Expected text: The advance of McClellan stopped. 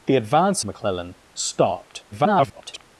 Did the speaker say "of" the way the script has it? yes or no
no